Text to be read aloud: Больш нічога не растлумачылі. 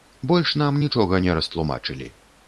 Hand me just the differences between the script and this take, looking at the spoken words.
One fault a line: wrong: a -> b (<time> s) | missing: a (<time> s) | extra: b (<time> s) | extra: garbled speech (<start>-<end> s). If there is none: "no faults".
extra: нам (0.6 s)